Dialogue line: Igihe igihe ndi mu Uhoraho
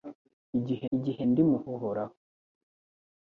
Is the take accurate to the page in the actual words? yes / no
yes